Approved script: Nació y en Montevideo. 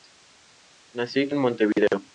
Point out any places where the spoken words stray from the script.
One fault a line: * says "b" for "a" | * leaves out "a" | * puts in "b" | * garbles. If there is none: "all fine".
all fine